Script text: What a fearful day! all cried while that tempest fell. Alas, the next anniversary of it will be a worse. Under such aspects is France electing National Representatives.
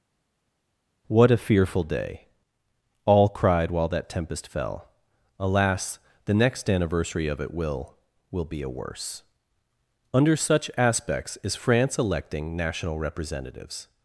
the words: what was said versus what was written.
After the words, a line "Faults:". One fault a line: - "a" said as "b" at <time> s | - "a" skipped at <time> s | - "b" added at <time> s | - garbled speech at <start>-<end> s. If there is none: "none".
What a fearful day! all cried while that tempest fell. Alas, the next anniversary of it will will be a worse. Under such aspects is France electing National Representatives.
Faults:
- "will" added at 8.3 s